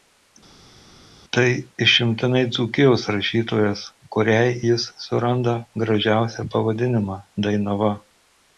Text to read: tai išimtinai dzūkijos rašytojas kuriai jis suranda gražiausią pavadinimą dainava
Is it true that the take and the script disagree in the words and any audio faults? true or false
false